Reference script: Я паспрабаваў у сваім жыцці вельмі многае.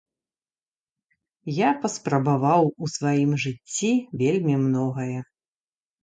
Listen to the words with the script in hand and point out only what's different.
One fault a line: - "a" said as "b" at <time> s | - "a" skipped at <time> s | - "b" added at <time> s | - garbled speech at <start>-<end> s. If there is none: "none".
none